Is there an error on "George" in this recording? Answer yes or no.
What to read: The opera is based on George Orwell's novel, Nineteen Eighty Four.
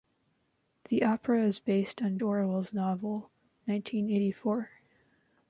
yes